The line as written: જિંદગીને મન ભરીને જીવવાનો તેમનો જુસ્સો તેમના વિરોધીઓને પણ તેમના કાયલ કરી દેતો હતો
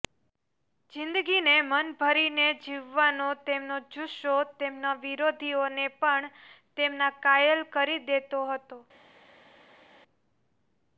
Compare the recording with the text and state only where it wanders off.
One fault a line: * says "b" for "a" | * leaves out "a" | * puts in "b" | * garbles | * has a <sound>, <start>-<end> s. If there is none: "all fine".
all fine